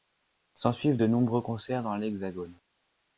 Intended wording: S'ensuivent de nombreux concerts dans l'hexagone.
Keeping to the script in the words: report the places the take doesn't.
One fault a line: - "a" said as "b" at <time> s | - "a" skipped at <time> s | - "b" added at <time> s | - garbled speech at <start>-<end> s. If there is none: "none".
none